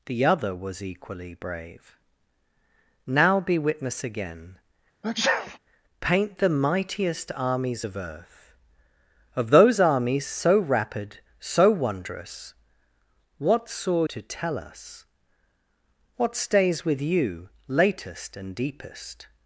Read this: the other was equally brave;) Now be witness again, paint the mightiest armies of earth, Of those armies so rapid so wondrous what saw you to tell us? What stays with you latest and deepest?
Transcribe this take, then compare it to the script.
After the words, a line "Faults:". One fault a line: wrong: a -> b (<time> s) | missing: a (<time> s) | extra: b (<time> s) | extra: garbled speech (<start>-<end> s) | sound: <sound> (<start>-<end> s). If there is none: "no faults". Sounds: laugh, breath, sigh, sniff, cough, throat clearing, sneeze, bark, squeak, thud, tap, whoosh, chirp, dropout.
the other was equally brave;) Now be witness again, paint the mightiest armies of earth, Of those armies so rapid so wondrous what saw to tell us? What stays with you latest and deepest?
Faults:
sound: sneeze (5.0-5.6 s)
missing: you (14.0 s)